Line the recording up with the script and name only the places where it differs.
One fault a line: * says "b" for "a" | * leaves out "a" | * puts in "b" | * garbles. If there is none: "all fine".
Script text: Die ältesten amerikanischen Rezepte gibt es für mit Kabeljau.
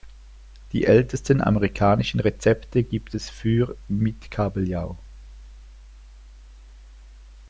all fine